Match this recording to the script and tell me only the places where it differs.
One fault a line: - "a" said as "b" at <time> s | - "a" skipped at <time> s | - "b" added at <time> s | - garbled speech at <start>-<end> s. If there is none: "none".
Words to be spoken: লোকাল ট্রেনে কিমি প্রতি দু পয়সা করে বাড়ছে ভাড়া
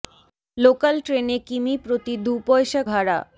- "করে বাড়ছে" skipped at 2.8 s